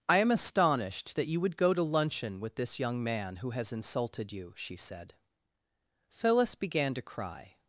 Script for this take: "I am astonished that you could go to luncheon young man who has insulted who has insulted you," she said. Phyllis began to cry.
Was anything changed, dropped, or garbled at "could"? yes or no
yes